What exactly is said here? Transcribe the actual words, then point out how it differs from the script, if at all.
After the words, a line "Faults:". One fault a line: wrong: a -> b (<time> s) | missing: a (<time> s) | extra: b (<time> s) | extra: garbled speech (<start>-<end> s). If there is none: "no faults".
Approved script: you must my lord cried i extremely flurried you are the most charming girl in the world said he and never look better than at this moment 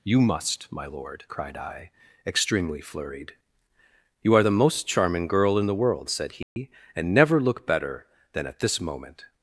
you must my lord cried i extremely flurried you are the most charming girl in the world said he and never look better than at this moment
Faults:
no faults